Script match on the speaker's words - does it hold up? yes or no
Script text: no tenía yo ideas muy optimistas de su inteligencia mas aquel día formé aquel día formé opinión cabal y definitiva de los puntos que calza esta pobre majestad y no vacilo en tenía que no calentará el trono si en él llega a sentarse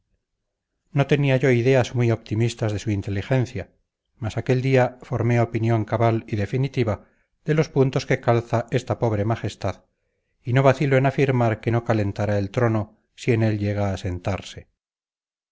no